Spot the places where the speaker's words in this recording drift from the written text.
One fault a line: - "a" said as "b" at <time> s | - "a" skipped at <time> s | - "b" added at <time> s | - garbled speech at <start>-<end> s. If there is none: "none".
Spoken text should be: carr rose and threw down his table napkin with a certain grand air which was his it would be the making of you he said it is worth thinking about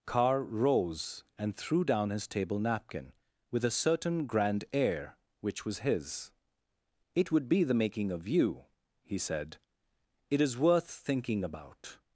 none